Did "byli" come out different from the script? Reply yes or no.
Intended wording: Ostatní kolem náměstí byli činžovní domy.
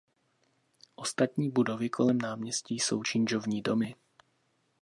yes